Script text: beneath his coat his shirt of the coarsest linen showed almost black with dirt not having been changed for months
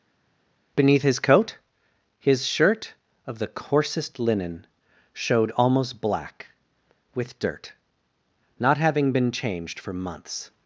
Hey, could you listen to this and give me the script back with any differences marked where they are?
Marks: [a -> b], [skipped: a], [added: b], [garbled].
beneath his coat his shirt of the coarsest linen showed almost black with dirt not having been changed for months